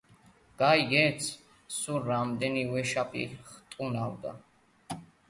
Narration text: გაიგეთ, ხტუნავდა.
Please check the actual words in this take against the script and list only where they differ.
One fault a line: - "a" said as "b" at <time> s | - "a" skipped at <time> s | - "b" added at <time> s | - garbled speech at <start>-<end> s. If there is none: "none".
- "სულ რამდენი ვეშაპი" added at 1.8 s